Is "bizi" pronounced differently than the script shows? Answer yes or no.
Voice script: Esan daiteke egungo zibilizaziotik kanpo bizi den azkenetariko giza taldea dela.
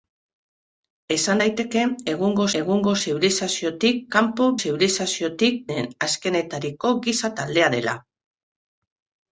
yes